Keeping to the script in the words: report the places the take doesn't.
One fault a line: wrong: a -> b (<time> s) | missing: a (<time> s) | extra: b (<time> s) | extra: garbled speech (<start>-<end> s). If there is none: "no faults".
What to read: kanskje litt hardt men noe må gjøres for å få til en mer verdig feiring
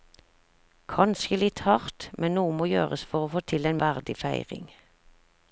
missing: mer (3.8 s)